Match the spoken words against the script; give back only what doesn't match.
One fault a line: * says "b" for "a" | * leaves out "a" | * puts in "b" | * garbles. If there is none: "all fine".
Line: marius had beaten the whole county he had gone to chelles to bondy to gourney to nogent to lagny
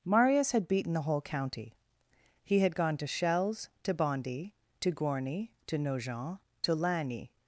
all fine